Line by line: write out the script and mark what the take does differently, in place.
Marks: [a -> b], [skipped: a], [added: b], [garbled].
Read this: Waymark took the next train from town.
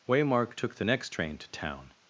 Waymark took the next train [from -> to] town.